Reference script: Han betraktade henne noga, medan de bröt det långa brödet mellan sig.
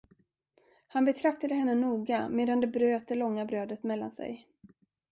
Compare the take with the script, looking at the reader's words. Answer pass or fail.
pass